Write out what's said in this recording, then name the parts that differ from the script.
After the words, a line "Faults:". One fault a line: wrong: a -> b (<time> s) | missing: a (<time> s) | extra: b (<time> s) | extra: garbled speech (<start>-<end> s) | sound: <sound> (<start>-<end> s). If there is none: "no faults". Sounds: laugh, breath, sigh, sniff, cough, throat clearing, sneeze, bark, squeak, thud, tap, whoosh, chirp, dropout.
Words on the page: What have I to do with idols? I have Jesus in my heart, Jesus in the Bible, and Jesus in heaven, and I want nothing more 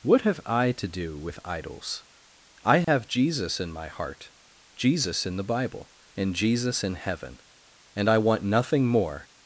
What have I to do with idols? I have Jesus in my heart, Jesus in the Bible, and Jesus in heaven, and I want nothing more
Faults:
sound: dropout (2.8-2.9 s)